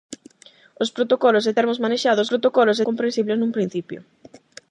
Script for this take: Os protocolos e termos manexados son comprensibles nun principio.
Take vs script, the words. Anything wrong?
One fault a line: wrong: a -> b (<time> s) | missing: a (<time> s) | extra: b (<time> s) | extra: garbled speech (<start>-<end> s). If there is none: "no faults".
wrong: son -> protocolos (2.3 s)